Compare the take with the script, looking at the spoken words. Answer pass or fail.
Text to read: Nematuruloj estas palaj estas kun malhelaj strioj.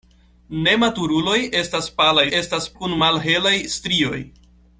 pass